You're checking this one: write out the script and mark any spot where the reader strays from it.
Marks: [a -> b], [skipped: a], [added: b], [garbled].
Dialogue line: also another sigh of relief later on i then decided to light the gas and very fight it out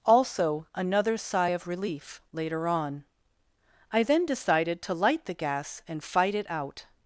also another sigh of relief later on i then decided to light the gas and [skipped: very] fight it out